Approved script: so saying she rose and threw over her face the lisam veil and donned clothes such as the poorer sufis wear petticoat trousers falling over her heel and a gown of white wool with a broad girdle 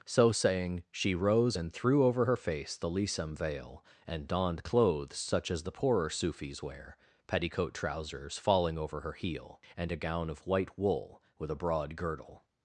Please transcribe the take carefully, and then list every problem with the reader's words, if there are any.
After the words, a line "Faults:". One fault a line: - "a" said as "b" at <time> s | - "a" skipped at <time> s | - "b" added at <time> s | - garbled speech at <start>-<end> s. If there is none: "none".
so saying she rose and threw over her face the lisam veil and donned clothes such as the poorer sufis wear petticoat trousers falling over her heel and a gown of white wool with a broad girdle
Faults:
none